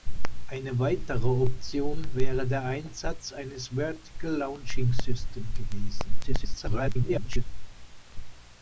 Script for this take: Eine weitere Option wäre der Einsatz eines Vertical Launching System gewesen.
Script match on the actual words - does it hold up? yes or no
no